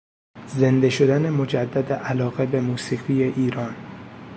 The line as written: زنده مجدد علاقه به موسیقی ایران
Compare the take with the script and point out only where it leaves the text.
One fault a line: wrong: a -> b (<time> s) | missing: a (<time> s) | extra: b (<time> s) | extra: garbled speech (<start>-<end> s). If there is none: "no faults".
extra: شدن (0.9 s)